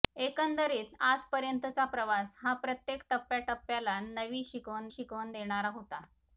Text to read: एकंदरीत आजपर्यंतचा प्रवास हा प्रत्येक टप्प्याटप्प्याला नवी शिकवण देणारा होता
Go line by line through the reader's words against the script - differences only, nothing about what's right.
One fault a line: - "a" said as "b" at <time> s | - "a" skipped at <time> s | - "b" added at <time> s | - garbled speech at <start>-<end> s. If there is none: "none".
- "शिकवण" added at 4.9 s